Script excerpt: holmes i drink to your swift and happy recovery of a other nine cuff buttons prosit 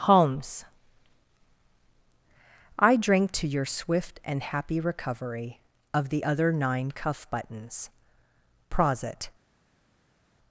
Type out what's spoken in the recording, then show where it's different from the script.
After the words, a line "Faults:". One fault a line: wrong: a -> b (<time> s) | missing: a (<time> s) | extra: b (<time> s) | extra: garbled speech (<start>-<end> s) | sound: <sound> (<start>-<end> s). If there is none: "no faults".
holmes i drink to your swift and happy recovery of the other nine cuff buttons prosit
Faults:
wrong: a -> the (6.1 s)